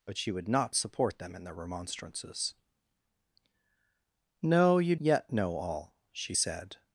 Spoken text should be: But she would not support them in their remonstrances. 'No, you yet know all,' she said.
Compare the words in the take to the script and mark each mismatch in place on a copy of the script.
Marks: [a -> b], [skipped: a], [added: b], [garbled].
But she would not support them in their remonstrances. 'No, you yet know all,' she said.